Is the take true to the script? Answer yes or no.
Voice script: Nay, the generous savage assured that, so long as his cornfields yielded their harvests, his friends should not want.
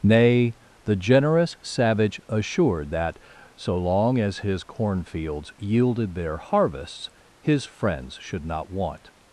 yes